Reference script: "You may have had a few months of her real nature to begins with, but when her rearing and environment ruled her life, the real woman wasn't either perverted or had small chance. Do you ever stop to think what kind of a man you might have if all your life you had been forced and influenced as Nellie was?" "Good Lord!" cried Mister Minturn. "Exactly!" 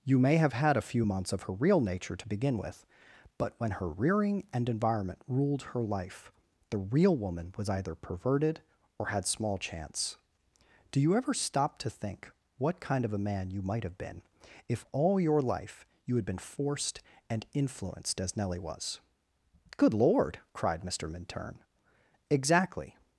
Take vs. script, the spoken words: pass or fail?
fail